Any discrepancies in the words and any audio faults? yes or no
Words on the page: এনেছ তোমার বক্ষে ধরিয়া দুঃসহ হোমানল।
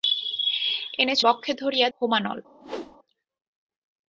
yes